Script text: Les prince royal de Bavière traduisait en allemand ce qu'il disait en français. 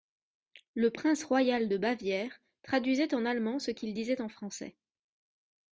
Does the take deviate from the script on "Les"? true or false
true